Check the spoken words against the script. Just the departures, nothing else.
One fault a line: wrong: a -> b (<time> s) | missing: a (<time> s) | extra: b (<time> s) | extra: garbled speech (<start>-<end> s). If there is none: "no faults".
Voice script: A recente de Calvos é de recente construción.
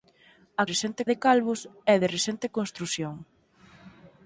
no faults